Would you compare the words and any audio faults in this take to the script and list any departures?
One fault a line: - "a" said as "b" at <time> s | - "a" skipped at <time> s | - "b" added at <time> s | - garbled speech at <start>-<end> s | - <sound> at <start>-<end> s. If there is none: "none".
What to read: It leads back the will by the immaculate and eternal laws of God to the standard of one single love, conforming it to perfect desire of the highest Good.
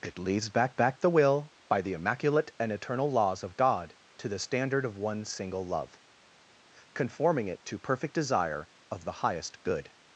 - "back" added at 0.7 s